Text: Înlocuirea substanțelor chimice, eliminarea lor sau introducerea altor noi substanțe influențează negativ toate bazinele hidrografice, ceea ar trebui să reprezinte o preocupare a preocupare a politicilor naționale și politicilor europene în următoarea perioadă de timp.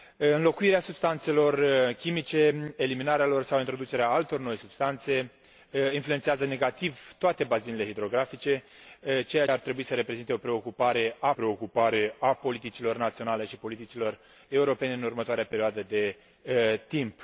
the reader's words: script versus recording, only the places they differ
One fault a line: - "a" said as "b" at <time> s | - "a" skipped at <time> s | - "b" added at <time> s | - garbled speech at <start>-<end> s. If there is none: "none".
none